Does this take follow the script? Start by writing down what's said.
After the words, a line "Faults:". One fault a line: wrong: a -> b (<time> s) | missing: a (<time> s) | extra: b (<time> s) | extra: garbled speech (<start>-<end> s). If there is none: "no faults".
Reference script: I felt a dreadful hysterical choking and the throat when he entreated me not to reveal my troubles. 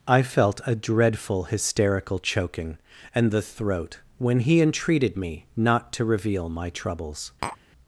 I felt a dreadful hysterical choking and the throat when he entreated me not to reveal my troubles.
Faults:
no faults